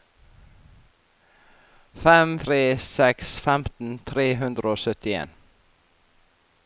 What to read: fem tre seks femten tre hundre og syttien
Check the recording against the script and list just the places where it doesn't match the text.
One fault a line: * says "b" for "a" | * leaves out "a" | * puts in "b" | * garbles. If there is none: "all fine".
all fine